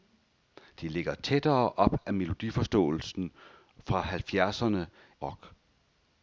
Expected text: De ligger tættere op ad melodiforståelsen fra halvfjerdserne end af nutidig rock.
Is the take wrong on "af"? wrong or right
wrong